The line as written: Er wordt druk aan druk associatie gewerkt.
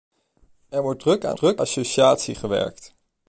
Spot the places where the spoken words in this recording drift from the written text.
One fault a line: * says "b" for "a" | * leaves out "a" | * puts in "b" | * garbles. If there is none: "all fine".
all fine